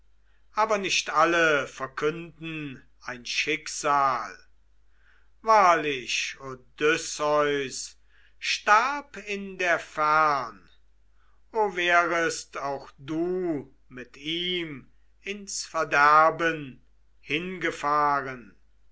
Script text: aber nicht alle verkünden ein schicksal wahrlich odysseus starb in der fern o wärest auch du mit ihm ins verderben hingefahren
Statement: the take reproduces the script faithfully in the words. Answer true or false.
true